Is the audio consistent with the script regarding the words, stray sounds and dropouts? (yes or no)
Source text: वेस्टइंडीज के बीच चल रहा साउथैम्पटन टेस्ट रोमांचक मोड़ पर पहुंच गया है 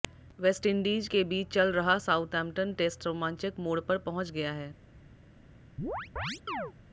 no